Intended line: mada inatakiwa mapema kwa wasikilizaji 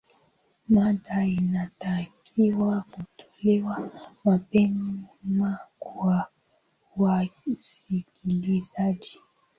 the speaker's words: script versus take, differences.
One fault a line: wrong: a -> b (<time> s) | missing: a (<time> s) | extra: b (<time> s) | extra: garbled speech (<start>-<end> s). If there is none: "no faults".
extra: kutolewa (2.9 s)